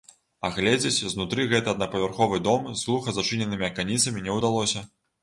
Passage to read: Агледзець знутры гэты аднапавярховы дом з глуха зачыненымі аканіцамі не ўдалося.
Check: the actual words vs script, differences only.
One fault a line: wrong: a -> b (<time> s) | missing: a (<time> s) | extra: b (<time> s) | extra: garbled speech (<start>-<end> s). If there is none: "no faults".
no faults